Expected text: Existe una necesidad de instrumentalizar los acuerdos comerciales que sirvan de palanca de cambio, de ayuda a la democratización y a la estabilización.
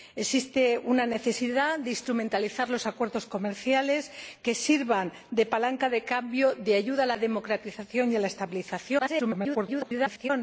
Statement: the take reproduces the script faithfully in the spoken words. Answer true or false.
false